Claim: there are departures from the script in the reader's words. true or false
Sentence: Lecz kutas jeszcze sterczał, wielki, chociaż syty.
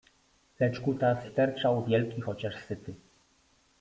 true